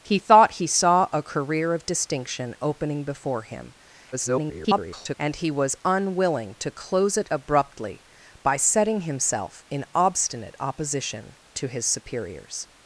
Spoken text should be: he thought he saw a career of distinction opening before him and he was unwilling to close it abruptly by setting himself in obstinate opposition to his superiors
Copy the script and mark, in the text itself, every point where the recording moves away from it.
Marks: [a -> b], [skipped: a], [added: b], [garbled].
he thought he saw a career of distinction opening before him [garbled] and he was unwilling to close it abruptly by setting himself in obstinate opposition to his superiors